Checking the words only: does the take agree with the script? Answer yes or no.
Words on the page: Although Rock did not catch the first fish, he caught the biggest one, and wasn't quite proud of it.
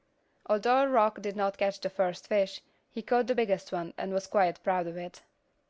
no